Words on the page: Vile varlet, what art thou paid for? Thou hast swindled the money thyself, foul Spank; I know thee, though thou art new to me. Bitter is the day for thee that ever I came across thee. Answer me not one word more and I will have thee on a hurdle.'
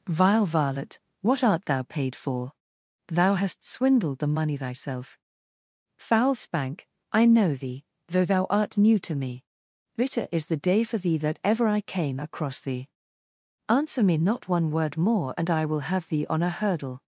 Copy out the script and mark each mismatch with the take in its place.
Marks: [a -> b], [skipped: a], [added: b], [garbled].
Vile varlet, what art thou paid for? Thou hast swindled the money thyself, foul Spank; I know thee, though thou art new to me. Bitter is the day for thee that ever I came across thee. Answer me not one word more and I will have thee on a hurdle.'